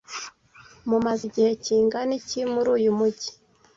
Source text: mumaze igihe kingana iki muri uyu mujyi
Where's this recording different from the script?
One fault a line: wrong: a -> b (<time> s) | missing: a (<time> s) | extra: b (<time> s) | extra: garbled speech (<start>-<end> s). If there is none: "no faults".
no faults